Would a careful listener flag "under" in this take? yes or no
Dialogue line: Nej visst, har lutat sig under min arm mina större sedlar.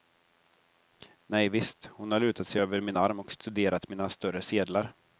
yes